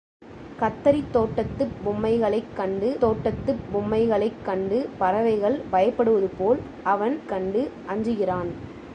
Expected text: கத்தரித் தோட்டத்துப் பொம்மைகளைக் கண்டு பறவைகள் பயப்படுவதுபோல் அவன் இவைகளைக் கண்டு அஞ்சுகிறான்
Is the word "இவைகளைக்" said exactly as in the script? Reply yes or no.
no